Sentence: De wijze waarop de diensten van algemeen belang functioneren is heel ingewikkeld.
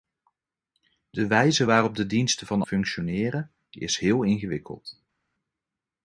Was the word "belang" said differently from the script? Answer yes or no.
yes